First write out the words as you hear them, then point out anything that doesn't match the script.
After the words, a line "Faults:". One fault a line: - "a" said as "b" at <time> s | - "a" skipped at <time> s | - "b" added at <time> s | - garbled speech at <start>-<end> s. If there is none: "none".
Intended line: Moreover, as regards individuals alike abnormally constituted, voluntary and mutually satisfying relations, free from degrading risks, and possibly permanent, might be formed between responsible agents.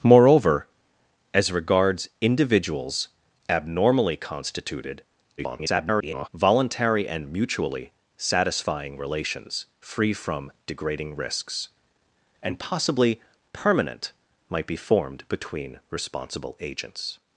Moreover, as regards individuals abnormally constituted, [garbled] voluntary and mutually satisfying relations, free from degrading risks, and possibly permanent, might be formed between responsible agents.
Faults:
- "alike" skipped at 3.1 s
- garbled speech at 5.4-6.3 s